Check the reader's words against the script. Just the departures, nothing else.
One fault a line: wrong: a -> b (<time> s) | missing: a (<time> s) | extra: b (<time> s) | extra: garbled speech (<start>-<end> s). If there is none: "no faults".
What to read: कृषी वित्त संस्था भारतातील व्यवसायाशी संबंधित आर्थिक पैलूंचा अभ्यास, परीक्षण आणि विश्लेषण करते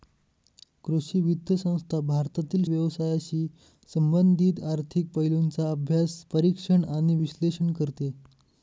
no faults